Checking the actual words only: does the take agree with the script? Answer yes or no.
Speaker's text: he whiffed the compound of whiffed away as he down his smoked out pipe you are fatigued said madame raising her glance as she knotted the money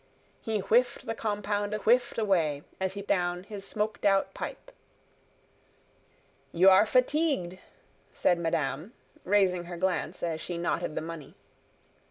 yes